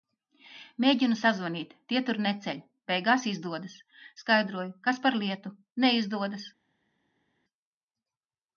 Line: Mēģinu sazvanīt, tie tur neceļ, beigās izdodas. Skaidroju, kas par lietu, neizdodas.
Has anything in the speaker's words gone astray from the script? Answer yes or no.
no